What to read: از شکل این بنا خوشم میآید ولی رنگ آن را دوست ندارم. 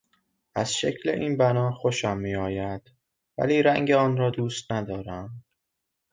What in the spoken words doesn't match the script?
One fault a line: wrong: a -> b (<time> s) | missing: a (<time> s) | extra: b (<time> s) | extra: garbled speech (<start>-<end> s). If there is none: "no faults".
no faults